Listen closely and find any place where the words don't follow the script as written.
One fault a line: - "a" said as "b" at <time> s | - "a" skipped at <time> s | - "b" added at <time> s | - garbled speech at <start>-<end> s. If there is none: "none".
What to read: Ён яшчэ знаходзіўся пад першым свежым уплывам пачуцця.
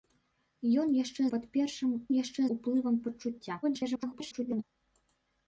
- "знаходзіўся" skipped at 1.2 s
- "свежым" said as "яшчэ" at 2.2 s
- garbled speech at 3.6-4.6 s